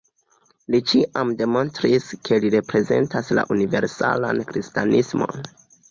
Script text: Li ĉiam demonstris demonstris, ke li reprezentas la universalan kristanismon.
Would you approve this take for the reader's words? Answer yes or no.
no